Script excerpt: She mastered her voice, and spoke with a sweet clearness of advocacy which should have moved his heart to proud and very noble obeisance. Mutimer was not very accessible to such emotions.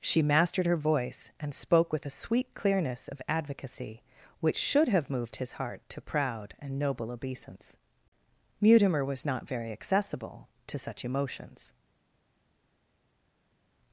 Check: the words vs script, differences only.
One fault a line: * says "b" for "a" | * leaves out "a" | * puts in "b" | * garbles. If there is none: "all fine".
* leaves out "very"